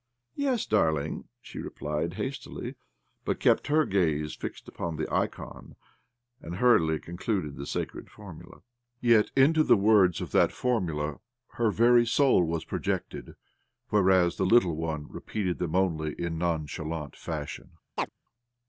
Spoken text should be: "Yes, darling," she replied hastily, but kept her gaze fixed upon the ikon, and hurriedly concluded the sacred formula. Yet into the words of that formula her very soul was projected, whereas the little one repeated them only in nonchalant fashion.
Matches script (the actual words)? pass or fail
pass